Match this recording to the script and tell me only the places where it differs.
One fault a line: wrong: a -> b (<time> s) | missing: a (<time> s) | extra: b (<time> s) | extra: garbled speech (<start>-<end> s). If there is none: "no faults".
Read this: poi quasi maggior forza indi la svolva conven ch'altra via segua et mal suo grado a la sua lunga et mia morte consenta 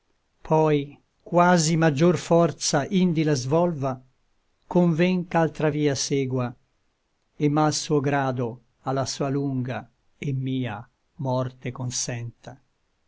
no faults